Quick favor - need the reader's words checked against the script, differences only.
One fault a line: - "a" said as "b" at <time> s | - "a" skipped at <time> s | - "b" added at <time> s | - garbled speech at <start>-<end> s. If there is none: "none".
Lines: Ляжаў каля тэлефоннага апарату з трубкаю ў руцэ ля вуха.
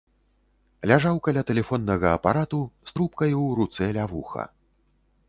none